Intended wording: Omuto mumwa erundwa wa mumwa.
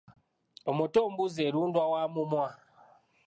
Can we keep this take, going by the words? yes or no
no